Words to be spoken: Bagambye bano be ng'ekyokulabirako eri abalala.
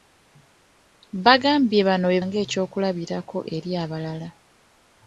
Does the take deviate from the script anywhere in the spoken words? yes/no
no